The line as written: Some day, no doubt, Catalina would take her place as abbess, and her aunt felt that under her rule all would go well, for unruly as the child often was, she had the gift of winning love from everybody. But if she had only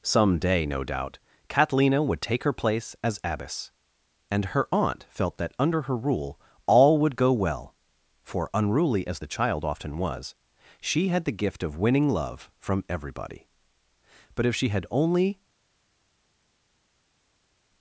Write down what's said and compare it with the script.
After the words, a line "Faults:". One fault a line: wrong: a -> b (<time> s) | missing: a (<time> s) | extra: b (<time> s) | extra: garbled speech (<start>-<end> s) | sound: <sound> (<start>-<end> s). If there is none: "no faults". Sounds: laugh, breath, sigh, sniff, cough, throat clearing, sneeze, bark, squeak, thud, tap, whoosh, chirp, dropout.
Some day, no doubt, Catalina would take her place as abbess, and her aunt felt that under her rule all would go well, for unruly as the child often was, she had the gift of winning love from everybody. But if she had only
Faults:
no faults